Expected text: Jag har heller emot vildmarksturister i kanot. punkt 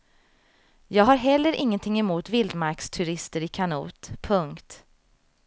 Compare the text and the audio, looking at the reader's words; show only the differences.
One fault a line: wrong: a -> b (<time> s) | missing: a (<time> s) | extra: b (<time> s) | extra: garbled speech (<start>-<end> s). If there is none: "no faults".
extra: ingenting (1.5 s)